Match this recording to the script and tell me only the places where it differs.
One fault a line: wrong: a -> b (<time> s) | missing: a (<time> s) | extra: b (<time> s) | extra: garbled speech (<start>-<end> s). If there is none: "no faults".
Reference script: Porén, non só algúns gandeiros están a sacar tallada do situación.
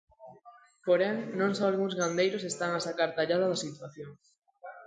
wrong: do -> da (3.5 s)